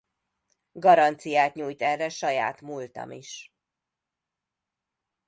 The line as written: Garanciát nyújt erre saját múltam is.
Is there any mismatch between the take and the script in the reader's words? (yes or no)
no